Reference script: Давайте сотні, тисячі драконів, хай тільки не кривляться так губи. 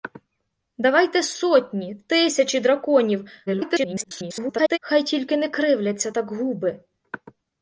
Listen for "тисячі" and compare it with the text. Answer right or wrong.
right